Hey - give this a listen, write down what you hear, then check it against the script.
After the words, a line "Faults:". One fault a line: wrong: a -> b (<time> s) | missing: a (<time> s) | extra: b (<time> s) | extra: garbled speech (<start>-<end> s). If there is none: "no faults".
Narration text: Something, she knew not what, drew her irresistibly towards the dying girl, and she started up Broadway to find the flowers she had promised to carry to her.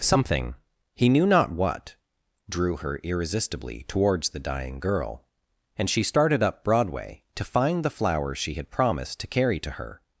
Something, he knew not what, drew her irresistibly towards the dying girl, and she started up Broadway to find the flowers she had promised to carry to her.
Faults:
wrong: she -> he (0.9 s)